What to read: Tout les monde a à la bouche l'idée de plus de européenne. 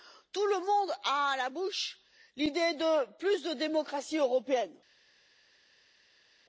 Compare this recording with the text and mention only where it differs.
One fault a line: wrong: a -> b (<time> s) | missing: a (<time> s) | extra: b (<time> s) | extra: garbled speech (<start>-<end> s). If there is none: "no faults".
wrong: les -> le (0.5 s)
extra: démocratie (3.5 s)